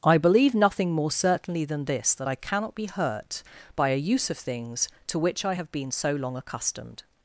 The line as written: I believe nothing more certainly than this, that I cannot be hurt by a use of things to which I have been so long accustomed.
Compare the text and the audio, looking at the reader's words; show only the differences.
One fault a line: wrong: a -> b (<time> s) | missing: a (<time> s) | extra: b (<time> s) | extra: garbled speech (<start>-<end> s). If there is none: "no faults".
no faults